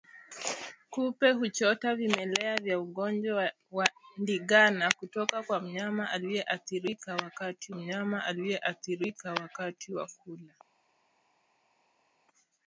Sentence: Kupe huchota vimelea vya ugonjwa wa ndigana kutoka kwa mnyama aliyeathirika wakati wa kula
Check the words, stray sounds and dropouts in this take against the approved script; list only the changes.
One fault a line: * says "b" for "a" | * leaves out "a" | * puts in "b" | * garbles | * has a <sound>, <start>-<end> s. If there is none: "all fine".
* puts in "mnyama aliyeathirika wakati"